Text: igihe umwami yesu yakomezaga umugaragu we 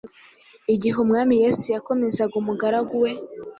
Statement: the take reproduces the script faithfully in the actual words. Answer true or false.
true